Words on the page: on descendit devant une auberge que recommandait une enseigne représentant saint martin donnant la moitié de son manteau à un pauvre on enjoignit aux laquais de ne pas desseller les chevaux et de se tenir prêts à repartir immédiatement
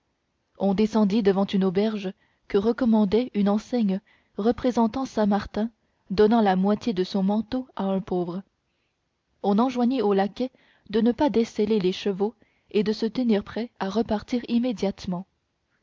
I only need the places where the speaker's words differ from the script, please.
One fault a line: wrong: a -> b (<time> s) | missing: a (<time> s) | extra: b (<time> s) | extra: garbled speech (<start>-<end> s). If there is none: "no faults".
no faults